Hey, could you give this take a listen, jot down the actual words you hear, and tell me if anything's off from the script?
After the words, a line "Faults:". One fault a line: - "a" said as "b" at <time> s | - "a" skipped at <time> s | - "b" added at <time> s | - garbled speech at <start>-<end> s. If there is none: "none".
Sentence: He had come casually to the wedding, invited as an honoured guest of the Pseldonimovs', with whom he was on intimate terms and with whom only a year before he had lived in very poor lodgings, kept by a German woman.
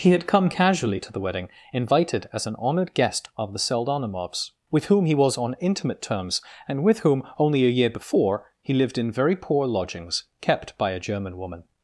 He had come casually to the wedding, invited as an honoured guest of the Pseldonimovs', with whom he was on intimate terms and with whom only a year before he lived in very poor lodgings, kept by a German woman.
Faults:
- "had" skipped at 8.7 s